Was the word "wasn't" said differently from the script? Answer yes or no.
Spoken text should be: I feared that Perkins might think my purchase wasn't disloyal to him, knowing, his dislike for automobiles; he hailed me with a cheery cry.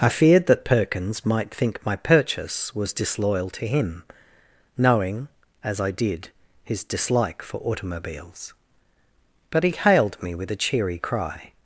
yes